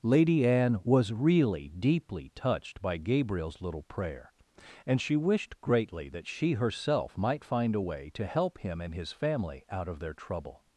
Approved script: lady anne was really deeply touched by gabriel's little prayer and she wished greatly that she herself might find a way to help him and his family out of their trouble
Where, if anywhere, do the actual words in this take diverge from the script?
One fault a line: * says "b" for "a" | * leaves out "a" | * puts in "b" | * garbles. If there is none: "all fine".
all fine